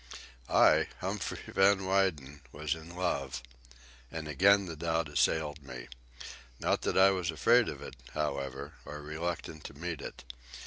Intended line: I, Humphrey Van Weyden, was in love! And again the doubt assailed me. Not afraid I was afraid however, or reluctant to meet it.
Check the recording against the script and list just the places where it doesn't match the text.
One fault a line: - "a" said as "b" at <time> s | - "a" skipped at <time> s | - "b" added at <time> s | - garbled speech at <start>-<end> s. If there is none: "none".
- "afraid" said as "that" at 6.8 s
- "of it" added at 7.7 s